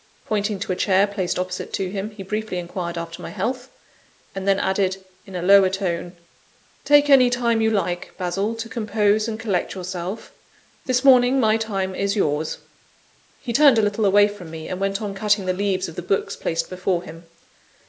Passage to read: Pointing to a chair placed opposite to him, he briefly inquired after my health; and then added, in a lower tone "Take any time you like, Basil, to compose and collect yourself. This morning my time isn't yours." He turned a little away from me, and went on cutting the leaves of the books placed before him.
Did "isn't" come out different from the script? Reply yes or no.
yes